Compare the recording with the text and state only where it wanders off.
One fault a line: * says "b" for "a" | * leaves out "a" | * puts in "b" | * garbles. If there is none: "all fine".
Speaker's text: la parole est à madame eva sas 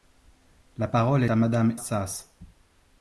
* leaves out "est"
* leaves out "eva"